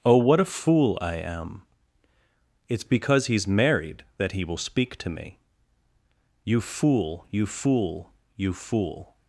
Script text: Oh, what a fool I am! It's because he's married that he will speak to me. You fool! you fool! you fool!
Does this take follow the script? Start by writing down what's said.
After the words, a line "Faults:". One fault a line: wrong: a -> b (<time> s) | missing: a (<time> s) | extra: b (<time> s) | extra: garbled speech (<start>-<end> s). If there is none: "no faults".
Oh, what a fool I am! It's because he's married that he will speak to me. You fool! you fool! you fool!
Faults:
no faults